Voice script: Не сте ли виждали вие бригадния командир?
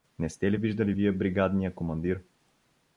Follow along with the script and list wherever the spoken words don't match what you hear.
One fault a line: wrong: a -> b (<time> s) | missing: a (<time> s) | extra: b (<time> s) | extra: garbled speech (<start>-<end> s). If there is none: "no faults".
no faults